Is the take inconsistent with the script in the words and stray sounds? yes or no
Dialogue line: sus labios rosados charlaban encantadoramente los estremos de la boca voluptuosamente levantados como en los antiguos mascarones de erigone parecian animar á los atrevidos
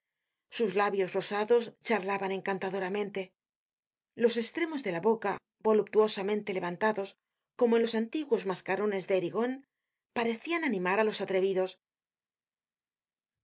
no